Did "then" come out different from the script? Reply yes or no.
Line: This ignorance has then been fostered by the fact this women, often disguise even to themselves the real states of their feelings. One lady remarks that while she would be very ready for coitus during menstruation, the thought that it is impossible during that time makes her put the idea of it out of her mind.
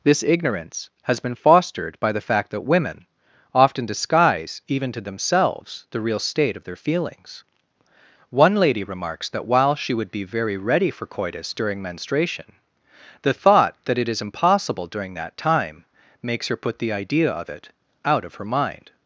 yes